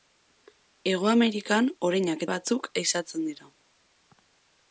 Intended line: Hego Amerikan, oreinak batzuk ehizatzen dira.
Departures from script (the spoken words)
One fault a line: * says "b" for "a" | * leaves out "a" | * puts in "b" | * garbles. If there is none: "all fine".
all fine